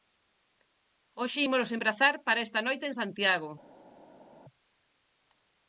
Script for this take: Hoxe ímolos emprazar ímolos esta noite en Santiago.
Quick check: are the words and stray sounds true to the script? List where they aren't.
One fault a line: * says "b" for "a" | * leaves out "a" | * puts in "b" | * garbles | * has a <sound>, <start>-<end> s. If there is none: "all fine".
* says "para" for "ímolos"